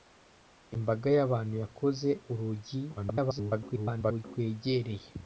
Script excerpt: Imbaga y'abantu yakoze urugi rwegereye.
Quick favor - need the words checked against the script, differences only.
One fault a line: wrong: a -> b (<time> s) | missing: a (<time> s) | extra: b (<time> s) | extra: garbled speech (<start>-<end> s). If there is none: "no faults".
extra: garbled speech (3.0-4.2 s)